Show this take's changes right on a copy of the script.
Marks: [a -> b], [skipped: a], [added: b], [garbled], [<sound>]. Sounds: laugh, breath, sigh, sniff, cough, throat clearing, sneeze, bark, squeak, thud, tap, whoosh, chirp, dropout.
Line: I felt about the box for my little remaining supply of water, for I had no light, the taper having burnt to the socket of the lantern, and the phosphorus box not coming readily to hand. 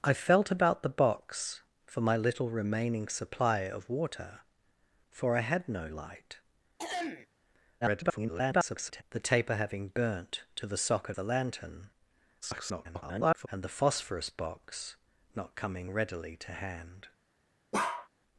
I felt about the box for my little remaining supply of water, for I had no light, [throat clearing] [garbled] the taper having burnt to the socket [skipped: of] the lantern, [garbled] and the phosphorus box not coming readily to hand. [bark]